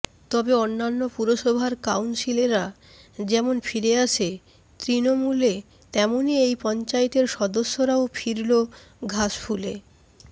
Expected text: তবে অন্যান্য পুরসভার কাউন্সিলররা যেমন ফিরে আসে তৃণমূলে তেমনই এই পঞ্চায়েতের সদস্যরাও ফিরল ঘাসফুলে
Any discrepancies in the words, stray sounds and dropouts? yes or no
no